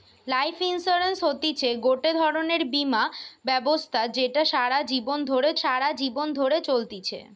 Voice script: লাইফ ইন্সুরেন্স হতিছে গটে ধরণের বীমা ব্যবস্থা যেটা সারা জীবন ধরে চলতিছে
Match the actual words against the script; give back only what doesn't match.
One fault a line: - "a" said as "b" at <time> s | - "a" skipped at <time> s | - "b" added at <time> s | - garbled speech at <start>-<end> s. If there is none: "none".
- "সারা জীবন ধরে" added at 5.6 s